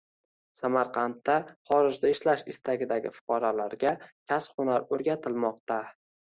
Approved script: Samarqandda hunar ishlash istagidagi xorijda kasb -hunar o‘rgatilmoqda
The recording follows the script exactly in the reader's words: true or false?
false